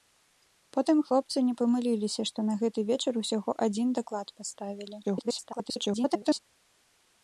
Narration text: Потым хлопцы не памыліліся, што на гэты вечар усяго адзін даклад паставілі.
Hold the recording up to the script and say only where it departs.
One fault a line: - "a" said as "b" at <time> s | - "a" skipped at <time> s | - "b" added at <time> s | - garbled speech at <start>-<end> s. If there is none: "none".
- garbled speech at 5.0-6.4 s